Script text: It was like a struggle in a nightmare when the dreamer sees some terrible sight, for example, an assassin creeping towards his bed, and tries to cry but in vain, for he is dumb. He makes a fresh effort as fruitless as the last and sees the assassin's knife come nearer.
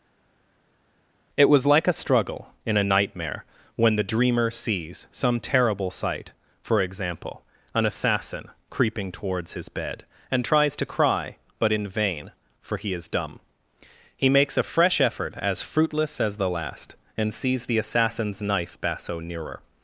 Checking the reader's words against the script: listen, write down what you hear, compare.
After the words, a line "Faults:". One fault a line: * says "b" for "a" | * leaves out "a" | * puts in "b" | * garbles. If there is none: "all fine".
It was like a struggle in a nightmare when the dreamer sees some terrible sight, for example, an assassin creeping towards his bed, and tries to cry but in vain, for he is dumb. He makes a fresh effort as fruitless as the last and sees the assassin's knife basso nearer.
Faults:
* says "basso" for "come"